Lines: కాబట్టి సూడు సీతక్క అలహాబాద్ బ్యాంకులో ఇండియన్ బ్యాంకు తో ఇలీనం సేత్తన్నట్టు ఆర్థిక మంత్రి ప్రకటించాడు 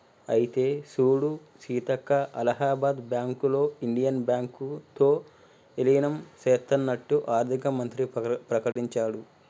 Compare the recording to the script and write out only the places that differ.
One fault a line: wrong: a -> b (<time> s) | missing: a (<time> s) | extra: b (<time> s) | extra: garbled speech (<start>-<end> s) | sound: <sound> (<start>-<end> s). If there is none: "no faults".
wrong: కాబట్టి -> అయితే (0.3 s)
sound: dropout (8.7-8.8 s)